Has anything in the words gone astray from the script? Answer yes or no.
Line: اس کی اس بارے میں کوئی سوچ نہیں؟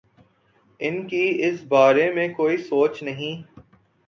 yes